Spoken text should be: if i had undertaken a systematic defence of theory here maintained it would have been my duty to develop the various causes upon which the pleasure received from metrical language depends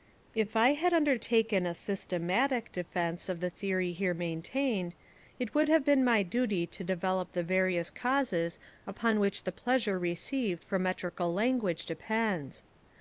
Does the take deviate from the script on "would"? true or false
false